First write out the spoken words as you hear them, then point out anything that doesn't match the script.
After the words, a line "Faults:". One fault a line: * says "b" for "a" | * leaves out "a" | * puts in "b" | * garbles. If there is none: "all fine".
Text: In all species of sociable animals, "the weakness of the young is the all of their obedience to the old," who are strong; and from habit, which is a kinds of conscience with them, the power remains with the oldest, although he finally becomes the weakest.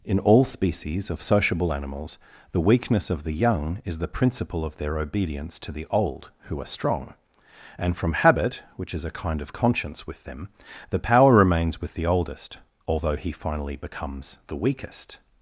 In all species of sociable animals, "the weakness of the young is the principle of their obedience to the old," who are strong; and from habit, which is a kind of conscience with them, the power remains with the oldest, although he finally becomes the weakest.
Faults:
* says "principle" for "all"
* says "kind" for "kinds"